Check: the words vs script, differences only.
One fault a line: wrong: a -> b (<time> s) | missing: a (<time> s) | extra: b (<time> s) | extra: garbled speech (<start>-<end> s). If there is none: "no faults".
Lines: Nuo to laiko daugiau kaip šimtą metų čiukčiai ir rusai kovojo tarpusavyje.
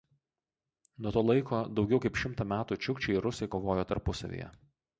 no faults